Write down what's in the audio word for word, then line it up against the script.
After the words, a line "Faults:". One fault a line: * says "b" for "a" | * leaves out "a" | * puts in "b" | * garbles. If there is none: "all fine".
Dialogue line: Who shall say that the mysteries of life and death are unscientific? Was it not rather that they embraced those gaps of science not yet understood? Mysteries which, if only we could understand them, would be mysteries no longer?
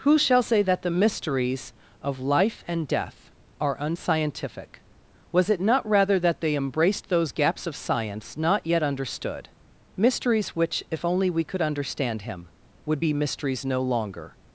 Who shall say that the mysteries of life and death are unscientific? Was it not rather that they embraced those gaps of science not yet understood? Mysteries which, if only we could understand him, would be mysteries no longer?
Faults:
* says "him" for "them"